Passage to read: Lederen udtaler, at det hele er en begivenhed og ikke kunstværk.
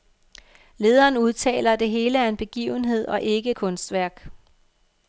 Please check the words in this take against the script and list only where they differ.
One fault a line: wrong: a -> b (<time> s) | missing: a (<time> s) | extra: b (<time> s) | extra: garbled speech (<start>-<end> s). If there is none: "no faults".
no faults